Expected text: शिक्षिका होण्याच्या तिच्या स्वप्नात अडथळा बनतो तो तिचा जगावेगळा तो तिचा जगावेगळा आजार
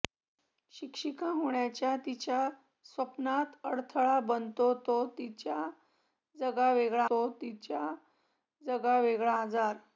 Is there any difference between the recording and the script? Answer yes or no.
no